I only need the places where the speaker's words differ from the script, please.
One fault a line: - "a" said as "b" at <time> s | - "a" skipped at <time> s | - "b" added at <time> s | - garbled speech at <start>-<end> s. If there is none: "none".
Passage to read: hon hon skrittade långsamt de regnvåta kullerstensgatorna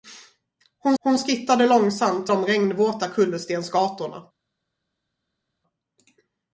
none